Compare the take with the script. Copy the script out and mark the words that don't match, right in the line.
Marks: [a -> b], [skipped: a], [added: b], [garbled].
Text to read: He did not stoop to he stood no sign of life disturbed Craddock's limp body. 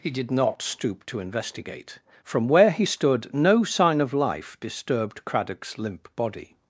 He did not stoop to [added: investigate from where] he stood no sign of life disturbed Craddock's limp body.